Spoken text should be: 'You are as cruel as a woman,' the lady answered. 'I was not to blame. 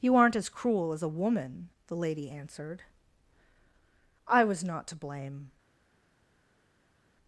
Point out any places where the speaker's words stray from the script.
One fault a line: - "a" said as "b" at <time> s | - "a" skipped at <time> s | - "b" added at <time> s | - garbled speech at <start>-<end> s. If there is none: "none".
- "are" said as "aren't" at 0.1 s